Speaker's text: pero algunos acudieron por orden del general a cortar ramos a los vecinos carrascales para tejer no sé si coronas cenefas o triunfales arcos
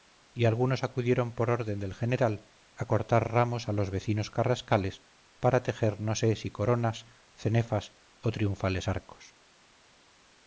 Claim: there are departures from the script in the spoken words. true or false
true